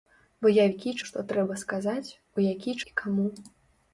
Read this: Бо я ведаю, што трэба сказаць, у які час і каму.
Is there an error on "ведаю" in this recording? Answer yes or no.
yes